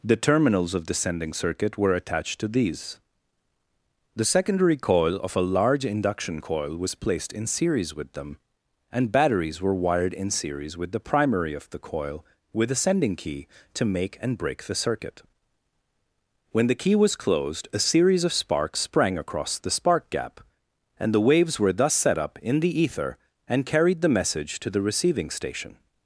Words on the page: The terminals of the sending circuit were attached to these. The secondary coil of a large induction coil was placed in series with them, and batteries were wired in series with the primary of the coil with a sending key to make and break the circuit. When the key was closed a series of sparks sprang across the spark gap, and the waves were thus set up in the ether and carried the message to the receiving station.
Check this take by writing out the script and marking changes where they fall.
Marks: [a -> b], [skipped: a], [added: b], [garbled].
The terminals of the sending circuit were attached to these. The secondary coil of a large induction coil was placed in series with them, and batteries were wired in series with the primary of the coil with a sending key to make and break the circuit. When the key was closed a series of sparks sprang across the spark gap, and the waves were thus set up in the ether and carried the message to the receiving station.